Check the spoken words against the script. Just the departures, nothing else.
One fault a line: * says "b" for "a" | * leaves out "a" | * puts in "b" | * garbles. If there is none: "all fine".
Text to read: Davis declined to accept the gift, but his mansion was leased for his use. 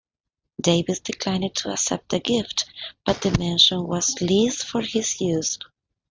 * says "the" for "his"